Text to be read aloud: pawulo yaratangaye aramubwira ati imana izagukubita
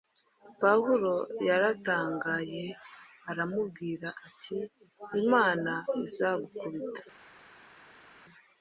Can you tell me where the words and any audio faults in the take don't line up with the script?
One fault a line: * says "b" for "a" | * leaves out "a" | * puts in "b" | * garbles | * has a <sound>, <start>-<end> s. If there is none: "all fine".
all fine